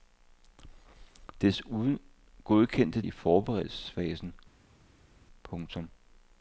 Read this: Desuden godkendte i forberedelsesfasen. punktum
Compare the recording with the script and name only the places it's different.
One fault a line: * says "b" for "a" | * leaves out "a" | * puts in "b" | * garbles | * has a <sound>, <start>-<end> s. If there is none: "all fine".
all fine